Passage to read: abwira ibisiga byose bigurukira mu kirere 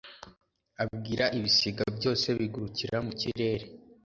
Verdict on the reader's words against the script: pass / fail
pass